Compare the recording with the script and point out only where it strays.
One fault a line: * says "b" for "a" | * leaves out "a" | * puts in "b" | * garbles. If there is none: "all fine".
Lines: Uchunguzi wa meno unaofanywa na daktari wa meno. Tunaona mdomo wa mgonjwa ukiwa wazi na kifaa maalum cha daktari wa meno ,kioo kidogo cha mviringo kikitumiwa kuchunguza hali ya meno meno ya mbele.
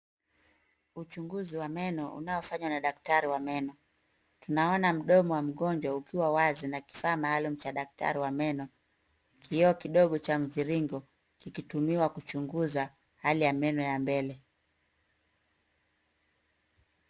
* leaves out "meno"